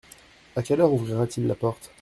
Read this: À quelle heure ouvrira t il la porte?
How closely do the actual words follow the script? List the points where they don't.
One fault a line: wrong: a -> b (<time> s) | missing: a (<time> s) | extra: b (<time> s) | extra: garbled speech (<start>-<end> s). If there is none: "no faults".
no faults